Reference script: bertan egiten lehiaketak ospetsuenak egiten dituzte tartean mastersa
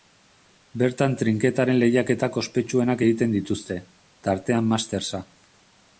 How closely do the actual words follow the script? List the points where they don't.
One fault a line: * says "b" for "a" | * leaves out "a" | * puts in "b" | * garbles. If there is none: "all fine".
* says "trinketaren" for "egiten"